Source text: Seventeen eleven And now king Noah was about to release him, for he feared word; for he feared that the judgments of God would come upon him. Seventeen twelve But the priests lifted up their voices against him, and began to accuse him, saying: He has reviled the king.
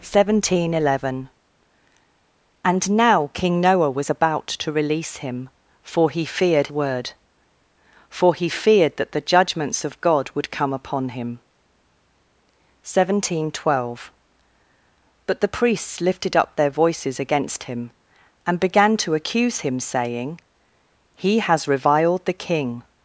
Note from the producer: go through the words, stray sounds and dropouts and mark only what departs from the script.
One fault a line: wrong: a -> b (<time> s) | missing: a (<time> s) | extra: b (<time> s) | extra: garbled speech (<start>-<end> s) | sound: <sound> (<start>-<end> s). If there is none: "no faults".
no faults